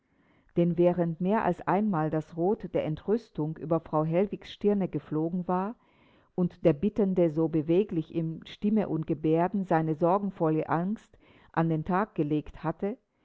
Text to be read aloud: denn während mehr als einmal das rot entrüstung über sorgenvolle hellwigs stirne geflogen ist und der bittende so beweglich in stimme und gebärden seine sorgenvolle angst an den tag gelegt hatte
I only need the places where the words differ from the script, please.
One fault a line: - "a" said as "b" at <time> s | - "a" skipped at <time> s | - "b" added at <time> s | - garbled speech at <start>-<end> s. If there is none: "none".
- "der" added at 2.7 s
- "sorgenvolle" said as "frau" at 3.8 s
- "ist" said as "war" at 5.5 s